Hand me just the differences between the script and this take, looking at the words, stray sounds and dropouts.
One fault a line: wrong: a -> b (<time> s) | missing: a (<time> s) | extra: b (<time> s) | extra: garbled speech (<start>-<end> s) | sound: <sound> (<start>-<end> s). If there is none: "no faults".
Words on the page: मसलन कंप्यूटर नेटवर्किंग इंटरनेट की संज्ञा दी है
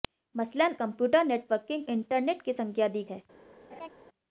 sound: laugh (3.7-3.9 s)